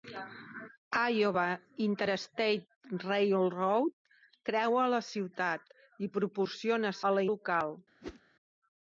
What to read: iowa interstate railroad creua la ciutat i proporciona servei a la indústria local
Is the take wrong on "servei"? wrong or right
wrong